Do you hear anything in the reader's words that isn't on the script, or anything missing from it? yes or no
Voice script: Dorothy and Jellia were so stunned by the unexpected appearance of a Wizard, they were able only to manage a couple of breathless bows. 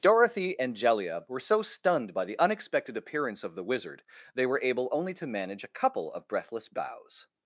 yes